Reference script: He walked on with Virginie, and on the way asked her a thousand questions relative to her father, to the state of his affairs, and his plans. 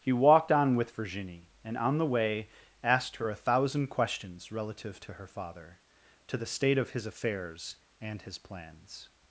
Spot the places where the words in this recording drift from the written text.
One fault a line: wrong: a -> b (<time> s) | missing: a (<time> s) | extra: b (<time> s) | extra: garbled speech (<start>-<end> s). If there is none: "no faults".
no faults